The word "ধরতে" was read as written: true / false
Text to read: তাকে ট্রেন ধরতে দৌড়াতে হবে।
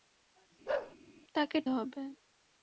false